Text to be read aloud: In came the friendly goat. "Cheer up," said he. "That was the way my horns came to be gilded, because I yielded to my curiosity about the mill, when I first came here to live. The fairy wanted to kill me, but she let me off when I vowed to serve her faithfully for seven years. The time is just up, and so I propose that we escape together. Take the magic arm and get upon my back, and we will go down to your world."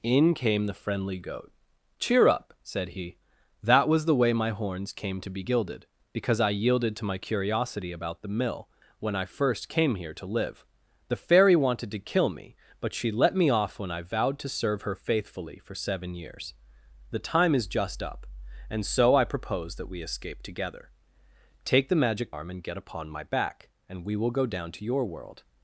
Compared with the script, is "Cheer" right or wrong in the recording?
right